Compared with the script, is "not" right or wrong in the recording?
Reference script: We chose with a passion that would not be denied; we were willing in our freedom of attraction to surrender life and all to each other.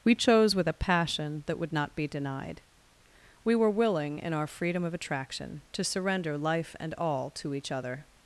right